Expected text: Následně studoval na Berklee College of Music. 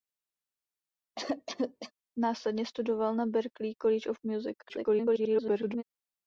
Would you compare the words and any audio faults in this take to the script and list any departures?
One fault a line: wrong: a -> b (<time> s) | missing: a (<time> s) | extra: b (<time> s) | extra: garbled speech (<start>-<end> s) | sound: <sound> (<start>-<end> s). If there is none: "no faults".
sound: cough (1.2-1.9 s)
extra: garbled speech (4.6-5.8 s)